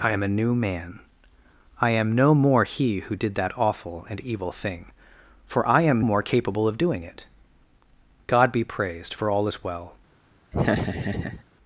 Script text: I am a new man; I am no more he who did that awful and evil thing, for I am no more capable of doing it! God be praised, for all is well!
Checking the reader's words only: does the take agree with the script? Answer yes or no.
no